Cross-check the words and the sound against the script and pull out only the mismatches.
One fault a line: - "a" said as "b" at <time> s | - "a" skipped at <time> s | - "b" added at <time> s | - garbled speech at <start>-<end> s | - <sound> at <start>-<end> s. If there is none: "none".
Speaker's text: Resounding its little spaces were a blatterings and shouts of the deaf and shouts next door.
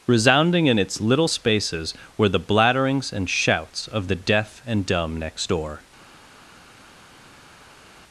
- "in" added at 0.7 s
- "a" said as "the" at 2.3 s
- "shouts" said as "dumb" at 4.9 s